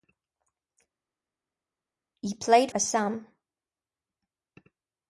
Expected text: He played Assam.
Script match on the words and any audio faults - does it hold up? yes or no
yes